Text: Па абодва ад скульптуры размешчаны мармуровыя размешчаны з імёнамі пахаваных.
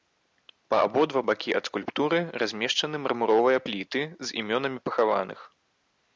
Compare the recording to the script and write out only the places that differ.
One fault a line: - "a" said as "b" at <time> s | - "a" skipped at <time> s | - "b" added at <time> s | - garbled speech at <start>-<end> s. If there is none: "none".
- "бакі" added at 1.3 s
- "размешчаны" said as "пліты" at 3.7 s